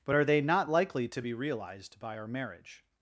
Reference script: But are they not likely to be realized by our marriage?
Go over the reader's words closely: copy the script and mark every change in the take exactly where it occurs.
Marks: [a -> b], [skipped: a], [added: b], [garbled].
But are they not likely to be realized by our marriage?